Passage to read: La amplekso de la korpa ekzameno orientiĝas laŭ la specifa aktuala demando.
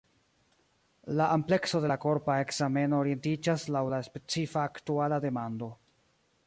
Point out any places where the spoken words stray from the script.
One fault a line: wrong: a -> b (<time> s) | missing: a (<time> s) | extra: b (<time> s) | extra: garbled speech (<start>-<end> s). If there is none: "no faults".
no faults